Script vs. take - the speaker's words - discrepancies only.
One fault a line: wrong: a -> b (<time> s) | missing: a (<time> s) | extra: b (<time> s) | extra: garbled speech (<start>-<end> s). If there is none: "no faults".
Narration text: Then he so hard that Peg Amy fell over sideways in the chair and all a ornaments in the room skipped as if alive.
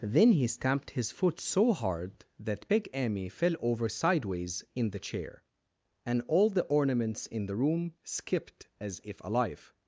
extra: stamped his foot (0.5 s)
wrong: a -> the (6.5 s)